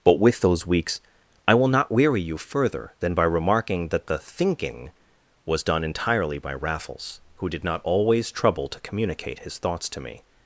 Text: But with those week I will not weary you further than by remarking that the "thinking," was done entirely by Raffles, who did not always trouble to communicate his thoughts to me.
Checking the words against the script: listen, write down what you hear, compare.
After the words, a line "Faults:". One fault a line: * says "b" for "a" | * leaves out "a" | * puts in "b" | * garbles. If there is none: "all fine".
But with those weeks I will not weary you further than by remarking that the "thinking," was done entirely by Raffles, who did not always trouble to communicate his thoughts to me.
Faults:
* says "weeks" for "week"